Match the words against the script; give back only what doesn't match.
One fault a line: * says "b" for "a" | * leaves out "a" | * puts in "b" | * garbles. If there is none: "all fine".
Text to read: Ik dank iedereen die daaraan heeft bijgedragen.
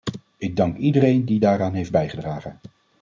all fine